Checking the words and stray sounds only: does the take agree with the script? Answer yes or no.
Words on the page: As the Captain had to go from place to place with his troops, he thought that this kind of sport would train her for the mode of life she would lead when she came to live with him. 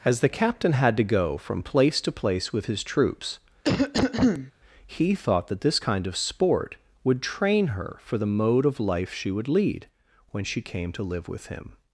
no